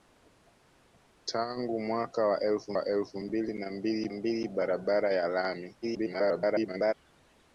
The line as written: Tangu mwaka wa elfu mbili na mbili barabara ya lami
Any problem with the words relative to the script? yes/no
yes